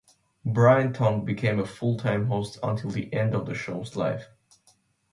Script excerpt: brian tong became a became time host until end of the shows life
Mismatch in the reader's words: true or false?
true